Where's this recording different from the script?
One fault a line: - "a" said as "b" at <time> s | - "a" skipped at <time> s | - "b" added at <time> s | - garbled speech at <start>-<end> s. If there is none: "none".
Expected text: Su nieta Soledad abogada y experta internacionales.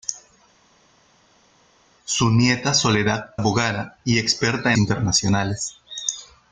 none